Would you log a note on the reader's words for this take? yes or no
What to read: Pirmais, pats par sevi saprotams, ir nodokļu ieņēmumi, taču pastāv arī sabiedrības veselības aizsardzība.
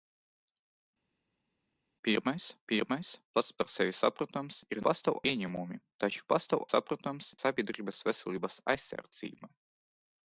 yes